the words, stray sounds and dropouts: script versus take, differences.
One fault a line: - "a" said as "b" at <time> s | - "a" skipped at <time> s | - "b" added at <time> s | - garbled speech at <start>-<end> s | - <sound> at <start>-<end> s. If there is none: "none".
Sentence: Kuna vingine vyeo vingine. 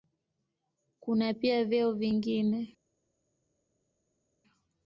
- "vingine" said as "pia" at 1.3 s